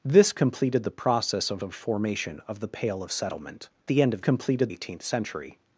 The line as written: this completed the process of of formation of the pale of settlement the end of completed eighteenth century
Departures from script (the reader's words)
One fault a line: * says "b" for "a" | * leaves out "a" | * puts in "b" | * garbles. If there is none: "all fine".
all fine